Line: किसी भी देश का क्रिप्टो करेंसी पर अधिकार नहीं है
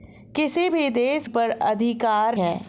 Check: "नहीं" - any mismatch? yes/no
yes